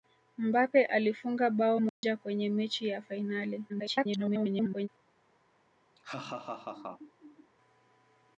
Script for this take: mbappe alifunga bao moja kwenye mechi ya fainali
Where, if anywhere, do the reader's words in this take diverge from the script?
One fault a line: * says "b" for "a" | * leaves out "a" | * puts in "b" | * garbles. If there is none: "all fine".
* garbles